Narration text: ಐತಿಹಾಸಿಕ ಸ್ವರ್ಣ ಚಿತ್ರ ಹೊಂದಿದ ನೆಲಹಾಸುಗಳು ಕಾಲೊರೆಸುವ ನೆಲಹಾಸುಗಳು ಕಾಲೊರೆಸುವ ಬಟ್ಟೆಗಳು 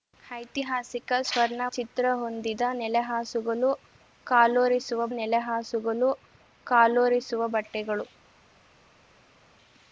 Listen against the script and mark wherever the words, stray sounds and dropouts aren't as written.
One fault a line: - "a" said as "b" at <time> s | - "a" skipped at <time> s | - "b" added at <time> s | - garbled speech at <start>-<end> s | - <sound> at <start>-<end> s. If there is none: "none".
none